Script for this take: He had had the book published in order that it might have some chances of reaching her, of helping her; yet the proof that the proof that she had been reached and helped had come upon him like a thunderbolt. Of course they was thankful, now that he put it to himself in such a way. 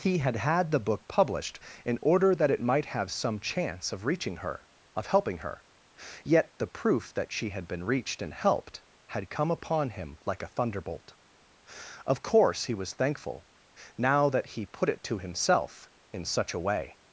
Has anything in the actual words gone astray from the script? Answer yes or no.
yes